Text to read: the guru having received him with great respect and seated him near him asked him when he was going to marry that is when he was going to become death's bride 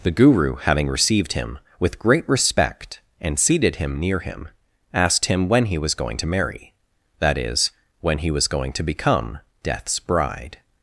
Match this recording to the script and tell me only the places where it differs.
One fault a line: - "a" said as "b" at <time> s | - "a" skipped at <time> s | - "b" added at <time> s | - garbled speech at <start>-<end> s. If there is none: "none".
none